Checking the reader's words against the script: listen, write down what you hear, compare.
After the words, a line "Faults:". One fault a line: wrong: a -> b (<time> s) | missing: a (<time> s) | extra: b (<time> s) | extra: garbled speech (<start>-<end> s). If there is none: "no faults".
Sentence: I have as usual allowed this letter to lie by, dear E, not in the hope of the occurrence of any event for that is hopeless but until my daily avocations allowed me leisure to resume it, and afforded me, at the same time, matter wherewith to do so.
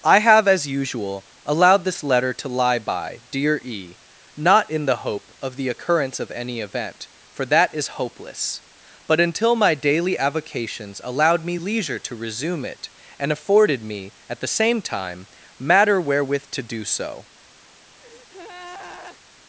I have as usual allowed this letter to lie by, dear E, not in the hope of the occurrence of any event for that is hopeless but until my daily avocations allowed me leisure to resume it, and afforded me, at the same time, matter wherewith to do so.
Faults:
no faults